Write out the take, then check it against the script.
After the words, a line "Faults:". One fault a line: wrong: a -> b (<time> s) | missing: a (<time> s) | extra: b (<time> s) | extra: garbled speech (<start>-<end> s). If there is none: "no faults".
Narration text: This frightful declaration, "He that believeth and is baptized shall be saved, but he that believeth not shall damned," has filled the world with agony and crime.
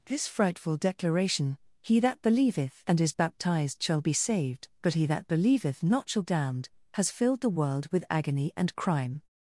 This frightful declaration, "He that believeth and is baptized shall be saved, but he that believeth not shall damned," has filled the world with agony and crime.
Faults:
no faults